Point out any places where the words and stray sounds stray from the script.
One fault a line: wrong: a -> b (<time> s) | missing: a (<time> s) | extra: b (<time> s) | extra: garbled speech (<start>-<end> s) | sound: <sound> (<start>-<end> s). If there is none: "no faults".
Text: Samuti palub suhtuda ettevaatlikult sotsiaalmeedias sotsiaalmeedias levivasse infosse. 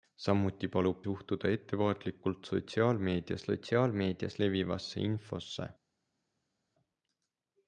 no faults